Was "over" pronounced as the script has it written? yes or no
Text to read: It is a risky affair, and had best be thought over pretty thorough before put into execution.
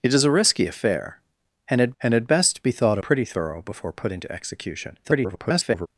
no